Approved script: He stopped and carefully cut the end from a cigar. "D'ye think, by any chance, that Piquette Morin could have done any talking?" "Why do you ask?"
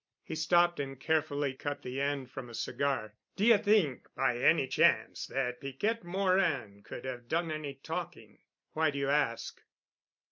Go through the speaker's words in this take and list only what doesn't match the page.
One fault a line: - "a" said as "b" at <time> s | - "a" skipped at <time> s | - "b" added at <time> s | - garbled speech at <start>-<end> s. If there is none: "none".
none